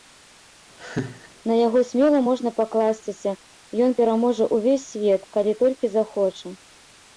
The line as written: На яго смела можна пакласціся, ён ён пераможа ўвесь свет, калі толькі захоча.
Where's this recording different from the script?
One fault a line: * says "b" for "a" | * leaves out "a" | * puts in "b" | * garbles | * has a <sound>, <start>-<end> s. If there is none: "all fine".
* has a laugh, 0.8-1.3 s
* leaves out "ён"